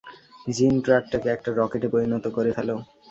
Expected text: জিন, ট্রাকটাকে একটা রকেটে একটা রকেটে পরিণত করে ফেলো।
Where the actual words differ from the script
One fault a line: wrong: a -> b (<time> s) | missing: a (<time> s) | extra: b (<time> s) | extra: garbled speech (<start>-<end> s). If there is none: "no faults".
missing: একটা রকেটে (1.9 s)